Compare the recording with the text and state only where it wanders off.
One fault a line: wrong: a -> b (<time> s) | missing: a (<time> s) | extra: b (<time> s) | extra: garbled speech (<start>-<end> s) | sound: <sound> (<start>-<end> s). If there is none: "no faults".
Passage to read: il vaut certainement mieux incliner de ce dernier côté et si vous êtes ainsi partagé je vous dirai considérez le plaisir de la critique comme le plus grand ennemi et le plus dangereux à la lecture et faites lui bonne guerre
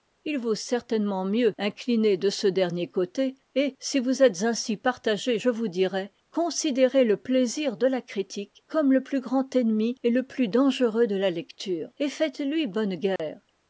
wrong: à -> de (11.1 s)
sound: dropout (13.2-13.2 s)